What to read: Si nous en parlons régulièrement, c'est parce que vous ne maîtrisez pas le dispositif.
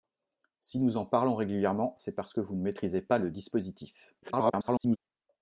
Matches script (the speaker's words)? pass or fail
fail